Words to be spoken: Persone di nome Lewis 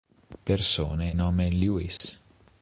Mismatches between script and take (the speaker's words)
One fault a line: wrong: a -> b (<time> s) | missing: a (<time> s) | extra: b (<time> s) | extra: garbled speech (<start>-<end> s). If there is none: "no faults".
missing: di (1.1 s)